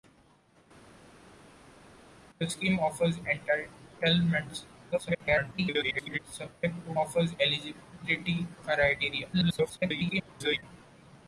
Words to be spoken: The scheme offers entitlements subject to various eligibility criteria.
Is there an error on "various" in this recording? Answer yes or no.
yes